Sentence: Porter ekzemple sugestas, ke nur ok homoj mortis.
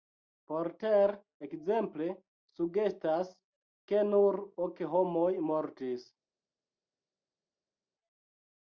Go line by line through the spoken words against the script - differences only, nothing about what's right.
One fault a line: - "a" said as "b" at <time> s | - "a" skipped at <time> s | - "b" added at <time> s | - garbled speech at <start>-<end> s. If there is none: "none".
none